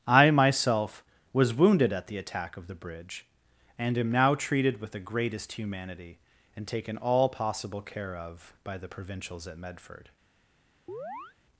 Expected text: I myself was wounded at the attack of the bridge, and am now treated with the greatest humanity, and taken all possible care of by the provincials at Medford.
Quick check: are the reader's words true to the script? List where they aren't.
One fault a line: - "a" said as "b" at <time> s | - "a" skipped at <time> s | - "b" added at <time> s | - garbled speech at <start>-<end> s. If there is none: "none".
none